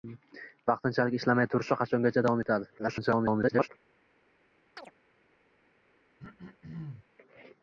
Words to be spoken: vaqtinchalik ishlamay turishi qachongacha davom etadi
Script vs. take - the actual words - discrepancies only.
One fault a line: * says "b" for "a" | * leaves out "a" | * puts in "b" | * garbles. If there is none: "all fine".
* garbles